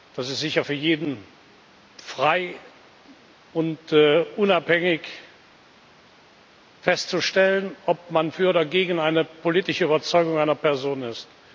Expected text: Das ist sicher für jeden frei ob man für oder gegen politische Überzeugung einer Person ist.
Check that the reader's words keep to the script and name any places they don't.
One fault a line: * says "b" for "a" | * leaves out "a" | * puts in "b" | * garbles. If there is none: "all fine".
* puts in "und unabhängig festzustellen"
* puts in "eine"